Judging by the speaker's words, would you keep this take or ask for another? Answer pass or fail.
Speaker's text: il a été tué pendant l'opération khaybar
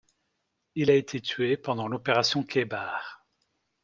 pass